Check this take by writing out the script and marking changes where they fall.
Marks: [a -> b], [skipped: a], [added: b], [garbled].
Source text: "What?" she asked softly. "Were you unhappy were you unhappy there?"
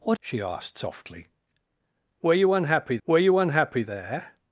"What?" she asked softly. "Were you unhappy were you unhappy there?"